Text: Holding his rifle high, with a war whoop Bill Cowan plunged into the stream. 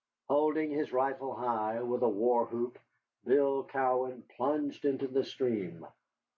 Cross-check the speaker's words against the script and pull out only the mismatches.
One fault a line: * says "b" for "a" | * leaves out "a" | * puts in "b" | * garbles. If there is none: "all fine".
all fine